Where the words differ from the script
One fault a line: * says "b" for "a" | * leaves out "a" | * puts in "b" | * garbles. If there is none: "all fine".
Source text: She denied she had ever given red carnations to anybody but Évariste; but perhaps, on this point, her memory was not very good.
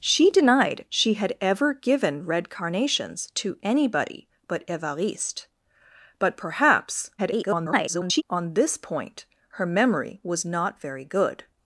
* garbles